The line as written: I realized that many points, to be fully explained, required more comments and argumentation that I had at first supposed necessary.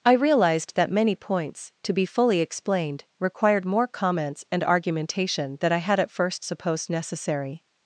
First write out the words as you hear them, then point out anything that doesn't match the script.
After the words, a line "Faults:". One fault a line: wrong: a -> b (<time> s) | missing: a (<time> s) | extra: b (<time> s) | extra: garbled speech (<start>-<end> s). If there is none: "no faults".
I realized that many points, to be fully explained, required more comments and argumentation than I had at first supposed necessary.
Faults:
wrong: that -> than (5.6 s)